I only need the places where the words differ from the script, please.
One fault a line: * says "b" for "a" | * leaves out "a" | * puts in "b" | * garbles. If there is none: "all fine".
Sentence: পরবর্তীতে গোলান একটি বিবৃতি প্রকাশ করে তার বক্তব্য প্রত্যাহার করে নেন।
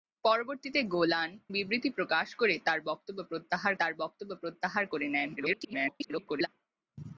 * leaves out "একটি"
* puts in "তার বক্তব্য প্রত্যাহার"
* garbles